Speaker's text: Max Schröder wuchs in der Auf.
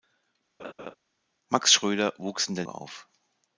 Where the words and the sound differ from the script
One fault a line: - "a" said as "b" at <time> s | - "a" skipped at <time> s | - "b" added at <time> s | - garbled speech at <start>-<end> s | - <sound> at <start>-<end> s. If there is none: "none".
- laugh at 0.6-1.0 s